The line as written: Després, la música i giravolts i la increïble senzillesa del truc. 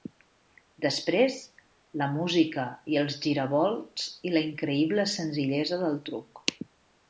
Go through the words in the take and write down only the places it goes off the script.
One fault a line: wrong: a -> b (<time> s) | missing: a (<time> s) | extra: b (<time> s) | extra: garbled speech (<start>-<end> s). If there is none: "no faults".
extra: els (3.0 s)